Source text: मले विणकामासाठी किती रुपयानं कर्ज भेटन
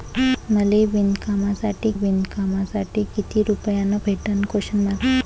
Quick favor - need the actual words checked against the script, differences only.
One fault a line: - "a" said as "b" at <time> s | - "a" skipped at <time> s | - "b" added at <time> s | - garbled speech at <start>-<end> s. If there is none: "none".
- "विणकामासाठी" added at 1.9 s
- "कर्ज" skipped at 4.0 s